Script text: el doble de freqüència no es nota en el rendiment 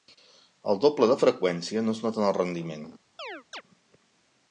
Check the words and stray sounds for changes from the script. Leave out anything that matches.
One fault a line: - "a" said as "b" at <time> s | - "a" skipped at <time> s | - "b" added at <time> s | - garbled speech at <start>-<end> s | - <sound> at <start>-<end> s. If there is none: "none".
- chirp at 3.2-3.6 s